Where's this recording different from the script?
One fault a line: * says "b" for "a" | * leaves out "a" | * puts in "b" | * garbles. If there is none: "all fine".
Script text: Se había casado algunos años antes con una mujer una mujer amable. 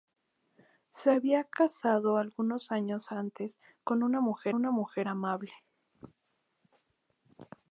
all fine